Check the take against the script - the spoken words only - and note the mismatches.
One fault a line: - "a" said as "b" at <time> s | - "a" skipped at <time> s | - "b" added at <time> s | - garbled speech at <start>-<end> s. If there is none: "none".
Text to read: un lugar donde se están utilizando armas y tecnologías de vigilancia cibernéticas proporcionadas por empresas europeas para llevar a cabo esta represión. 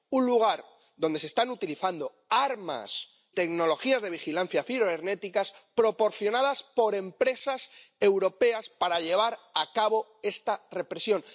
- "y" skipped at 3.1 s